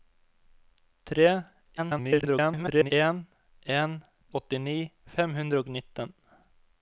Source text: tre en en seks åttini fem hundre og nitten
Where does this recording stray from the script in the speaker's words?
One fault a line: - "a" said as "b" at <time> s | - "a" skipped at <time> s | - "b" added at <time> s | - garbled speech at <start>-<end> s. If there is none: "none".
- garbled speech at 1.8-2.9 s
- "seks" skipped at 4.0 s